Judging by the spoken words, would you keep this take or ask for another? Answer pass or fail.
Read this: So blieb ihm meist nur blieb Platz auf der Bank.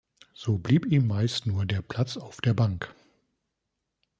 fail